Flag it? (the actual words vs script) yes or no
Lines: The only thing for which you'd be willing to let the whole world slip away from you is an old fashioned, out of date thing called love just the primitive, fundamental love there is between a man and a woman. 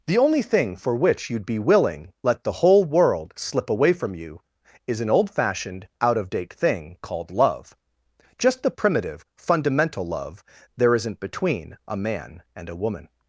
yes